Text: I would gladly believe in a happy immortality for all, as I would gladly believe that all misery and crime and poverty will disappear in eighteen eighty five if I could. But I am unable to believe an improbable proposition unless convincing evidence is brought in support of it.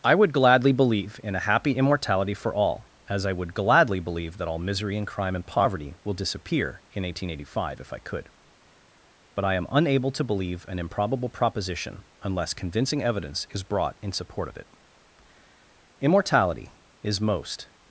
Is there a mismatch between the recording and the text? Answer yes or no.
yes